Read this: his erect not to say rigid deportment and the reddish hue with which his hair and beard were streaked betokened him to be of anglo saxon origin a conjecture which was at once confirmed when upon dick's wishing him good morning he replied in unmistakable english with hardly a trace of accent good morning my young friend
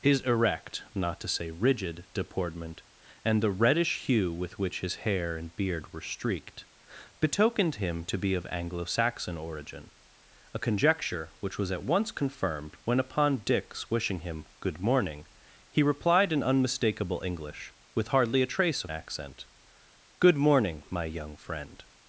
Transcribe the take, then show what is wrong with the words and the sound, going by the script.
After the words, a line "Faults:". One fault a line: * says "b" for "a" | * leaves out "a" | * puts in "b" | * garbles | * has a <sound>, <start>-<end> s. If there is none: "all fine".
his erect not to say rigid deportment and the reddish hue with which his hair and beard were streaked betokened him to be of anglo saxon origin a conjecture which was at once confirmed when upon dick's wishing him good morning he replied in unmistakable english with hardly a trace of accent good morning my young friend
Faults:
all fine